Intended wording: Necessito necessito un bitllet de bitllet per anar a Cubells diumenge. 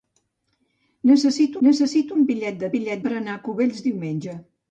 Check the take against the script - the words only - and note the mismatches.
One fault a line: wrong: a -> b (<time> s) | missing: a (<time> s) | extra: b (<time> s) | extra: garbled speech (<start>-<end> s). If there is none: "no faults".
no faults